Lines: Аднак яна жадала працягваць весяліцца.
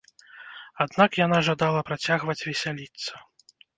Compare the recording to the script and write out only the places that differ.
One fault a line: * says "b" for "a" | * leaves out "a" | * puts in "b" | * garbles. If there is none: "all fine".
all fine